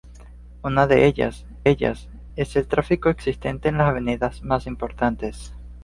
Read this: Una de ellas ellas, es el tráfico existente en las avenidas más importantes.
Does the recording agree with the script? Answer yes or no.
yes